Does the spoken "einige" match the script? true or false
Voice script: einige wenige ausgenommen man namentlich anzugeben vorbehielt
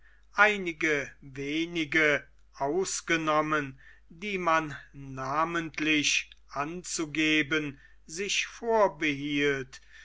true